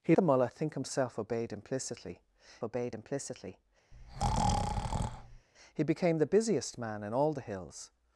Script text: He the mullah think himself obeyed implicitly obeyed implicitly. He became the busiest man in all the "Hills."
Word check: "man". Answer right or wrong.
right